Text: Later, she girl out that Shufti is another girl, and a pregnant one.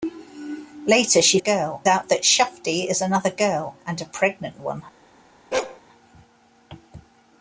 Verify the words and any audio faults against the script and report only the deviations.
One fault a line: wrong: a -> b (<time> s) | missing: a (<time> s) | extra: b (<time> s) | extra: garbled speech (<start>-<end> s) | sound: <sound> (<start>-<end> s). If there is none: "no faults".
sound: bark (5.5-5.8 s)